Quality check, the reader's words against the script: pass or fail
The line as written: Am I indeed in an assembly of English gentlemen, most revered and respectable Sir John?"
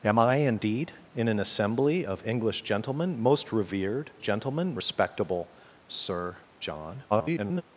fail